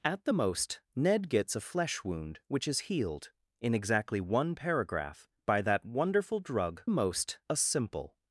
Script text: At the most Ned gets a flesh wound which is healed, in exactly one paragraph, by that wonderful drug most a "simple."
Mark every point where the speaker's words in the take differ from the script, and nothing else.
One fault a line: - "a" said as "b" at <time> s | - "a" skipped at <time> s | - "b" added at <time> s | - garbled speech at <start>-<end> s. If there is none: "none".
none